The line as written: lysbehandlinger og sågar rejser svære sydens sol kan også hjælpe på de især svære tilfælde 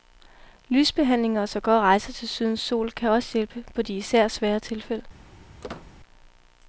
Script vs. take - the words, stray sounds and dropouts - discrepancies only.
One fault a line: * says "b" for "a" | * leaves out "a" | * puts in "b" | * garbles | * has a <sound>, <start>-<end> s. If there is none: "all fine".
* says "til" for "svære"
* has a squeak, 5.6-5.9 s